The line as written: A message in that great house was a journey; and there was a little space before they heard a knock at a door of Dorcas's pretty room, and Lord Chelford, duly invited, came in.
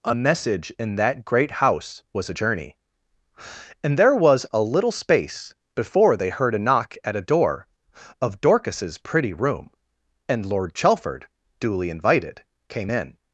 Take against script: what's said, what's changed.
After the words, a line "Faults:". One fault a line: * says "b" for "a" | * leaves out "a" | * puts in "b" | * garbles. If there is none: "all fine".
A message in that great house was a journey; and there was a little space before they heard a knock at a door of Dorcas's pretty room, and Lord Chelford, duly invited, came in.
Faults:
all fine